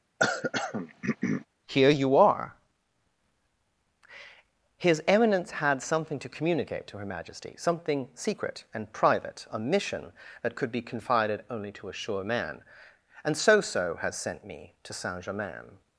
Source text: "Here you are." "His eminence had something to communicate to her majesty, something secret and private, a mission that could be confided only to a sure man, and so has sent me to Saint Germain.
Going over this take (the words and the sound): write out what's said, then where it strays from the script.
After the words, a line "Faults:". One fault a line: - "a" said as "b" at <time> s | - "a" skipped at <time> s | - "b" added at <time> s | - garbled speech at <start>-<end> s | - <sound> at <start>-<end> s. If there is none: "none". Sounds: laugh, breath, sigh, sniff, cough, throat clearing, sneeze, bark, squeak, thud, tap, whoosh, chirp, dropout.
"Here you are." "His eminence had something to communicate to her majesty, something secret and private, a mission that could be confided only to a sure man, and so so has sent me to Saint Germain.
Faults:
- throat clearing at 0.2-1.5 s
- "so" added at 13.6 s